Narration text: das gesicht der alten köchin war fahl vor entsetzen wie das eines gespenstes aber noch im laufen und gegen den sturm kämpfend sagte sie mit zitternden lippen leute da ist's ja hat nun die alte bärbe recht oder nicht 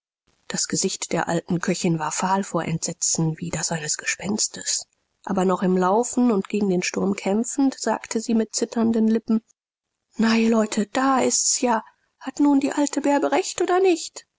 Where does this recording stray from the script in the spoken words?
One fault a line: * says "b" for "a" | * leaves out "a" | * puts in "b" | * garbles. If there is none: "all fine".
* puts in "na ihr"